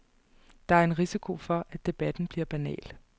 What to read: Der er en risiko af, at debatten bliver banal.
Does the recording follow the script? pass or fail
fail